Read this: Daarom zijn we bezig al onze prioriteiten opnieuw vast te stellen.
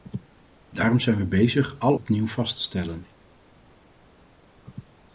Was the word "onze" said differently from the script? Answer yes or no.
yes